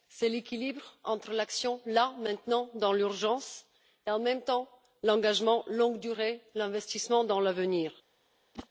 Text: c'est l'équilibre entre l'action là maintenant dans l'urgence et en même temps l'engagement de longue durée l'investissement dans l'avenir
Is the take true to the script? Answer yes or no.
yes